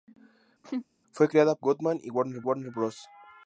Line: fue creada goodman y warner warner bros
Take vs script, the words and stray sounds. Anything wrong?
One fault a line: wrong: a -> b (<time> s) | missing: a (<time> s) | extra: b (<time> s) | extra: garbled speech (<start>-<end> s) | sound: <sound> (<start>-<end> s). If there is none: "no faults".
sound: laugh (0.6-0.9 s)